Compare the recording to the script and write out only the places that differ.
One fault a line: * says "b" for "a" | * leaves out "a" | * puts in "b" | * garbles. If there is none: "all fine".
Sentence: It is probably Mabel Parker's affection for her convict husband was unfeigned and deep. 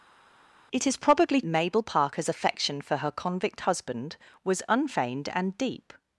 all fine